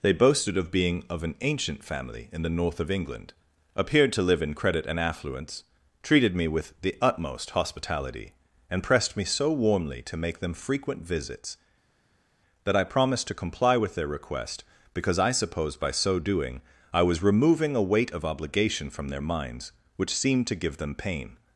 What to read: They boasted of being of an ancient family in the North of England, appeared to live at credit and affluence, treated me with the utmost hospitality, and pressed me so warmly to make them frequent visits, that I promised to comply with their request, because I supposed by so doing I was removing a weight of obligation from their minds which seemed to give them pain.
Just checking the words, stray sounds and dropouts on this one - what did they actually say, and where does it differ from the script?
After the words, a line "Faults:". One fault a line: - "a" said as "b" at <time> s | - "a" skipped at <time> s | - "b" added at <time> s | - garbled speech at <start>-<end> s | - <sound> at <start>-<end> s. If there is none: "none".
They boasted of being of an ancient family in the North of England, appeared to live in credit and affluence, treated me with the utmost hospitality, and pressed me so warmly to make them frequent visits, that I promised to comply with their request, because I supposed by so doing I was removing a weight of obligation from their minds which seemed to give them pain.
Faults:
- "at" said as "in" at 4.4 s